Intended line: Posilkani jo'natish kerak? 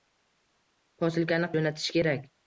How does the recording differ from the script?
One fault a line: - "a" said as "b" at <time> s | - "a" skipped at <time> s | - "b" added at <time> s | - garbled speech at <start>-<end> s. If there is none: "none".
none